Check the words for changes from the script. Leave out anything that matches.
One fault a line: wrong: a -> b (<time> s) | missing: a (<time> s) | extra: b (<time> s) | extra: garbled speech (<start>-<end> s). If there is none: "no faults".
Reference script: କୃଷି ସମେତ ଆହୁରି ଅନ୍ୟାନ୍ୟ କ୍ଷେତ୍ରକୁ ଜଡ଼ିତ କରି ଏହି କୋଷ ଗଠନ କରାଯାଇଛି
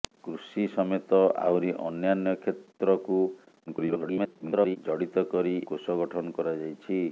extra: garbled speech (3.7-4.8 s)
missing: ଏହି (5.6 s)